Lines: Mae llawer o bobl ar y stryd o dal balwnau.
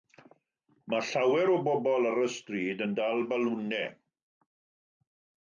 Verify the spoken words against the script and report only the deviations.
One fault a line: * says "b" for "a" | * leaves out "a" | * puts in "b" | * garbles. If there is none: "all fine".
* says "yn" for "o"